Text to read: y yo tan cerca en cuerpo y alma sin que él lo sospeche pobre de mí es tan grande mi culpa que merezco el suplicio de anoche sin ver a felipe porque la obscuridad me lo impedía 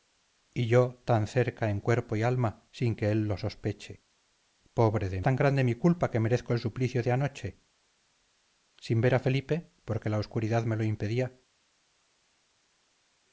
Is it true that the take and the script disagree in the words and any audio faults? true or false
true